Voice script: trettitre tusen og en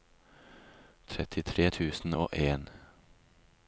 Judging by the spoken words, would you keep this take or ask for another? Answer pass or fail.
pass